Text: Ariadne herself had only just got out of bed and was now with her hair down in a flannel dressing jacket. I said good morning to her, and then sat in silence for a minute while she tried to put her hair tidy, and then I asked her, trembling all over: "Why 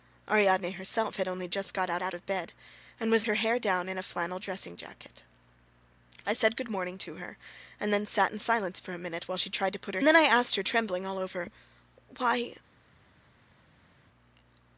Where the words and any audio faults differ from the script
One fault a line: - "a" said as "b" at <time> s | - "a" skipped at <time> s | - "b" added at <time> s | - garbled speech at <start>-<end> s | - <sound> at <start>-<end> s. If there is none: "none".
- "out" added at 2.0 s
- "now with" skipped at 3.2 s
- "hair tidy and" skipped at 10.0 s